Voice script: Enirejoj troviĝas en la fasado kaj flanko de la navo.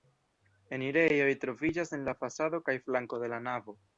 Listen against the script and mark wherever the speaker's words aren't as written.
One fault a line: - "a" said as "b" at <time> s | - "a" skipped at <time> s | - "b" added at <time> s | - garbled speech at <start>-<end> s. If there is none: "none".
none